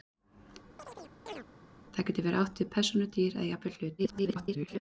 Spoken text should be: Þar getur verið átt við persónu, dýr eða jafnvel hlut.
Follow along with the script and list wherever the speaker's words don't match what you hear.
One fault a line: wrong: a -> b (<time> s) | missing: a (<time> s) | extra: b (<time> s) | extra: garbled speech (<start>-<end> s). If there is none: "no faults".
extra: garbled speech (4.0-4.8 s)